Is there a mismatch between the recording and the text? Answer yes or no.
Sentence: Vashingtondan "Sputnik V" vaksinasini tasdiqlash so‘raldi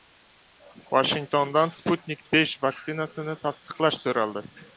no